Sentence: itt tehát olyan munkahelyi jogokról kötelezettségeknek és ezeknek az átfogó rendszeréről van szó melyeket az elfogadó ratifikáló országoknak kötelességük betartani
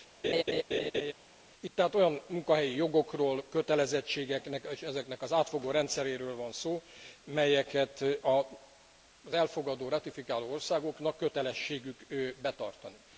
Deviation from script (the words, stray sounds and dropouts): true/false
true